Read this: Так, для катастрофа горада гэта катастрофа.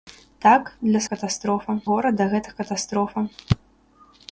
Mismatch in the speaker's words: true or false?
false